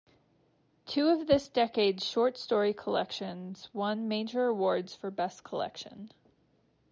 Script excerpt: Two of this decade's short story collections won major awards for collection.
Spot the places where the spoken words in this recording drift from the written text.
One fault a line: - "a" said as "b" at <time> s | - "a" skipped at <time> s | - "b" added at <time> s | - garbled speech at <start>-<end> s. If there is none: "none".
- "best" added at 5.1 s